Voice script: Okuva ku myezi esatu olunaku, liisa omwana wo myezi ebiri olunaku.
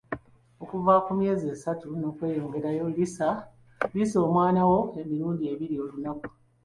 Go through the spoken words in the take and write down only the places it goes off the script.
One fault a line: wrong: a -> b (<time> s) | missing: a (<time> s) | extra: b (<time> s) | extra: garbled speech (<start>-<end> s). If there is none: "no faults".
wrong: olunaku -> n'okweyongerayo (2.0 s)
wrong: myezi -> emirundi (5.0 s)